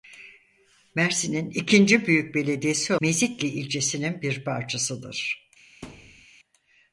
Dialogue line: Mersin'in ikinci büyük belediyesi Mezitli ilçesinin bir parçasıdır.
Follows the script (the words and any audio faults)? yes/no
no